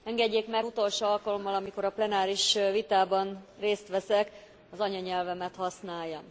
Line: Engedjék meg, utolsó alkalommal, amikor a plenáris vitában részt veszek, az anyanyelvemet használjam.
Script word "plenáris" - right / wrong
right